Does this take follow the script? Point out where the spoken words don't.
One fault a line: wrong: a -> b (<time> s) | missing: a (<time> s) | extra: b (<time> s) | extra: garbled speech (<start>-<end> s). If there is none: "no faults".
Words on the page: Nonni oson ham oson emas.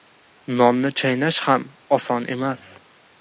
wrong: oson -> chaynash (1.0 s)